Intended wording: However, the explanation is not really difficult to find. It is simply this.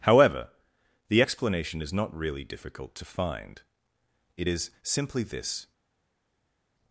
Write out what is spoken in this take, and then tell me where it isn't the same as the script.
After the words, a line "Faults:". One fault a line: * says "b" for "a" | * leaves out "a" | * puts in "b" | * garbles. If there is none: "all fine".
However, the explanation is not really difficult to find. It is simply this.
Faults:
all fine